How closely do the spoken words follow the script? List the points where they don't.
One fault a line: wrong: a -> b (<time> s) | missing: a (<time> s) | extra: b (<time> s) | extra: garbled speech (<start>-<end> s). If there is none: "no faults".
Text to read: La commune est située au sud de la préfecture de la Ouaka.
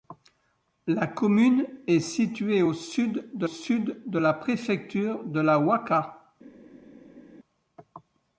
extra: sud de (3.4 s)